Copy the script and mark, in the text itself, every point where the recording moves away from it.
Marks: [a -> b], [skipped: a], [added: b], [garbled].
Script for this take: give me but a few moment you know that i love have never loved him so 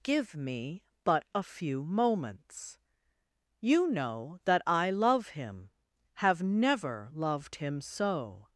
give me but a few [moment -> moments] you know that i love [added: him] have never loved him so